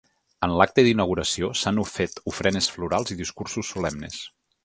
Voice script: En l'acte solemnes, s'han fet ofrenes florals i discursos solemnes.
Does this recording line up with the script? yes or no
no